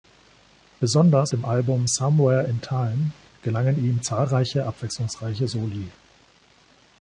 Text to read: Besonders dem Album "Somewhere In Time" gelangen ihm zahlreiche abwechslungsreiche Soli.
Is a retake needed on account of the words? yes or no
no